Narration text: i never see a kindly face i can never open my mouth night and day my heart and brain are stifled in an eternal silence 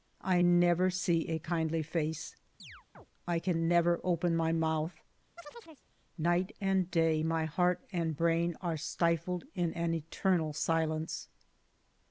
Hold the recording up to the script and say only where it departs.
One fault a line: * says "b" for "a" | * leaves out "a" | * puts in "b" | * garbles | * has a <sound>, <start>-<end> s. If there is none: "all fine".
* has a chirp, 2.6-3.1 s
* has a chirp, 5.4-5.9 s